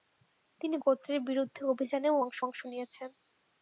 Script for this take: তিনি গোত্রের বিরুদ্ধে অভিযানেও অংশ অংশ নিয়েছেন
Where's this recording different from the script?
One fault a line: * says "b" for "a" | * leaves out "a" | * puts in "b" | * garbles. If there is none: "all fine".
all fine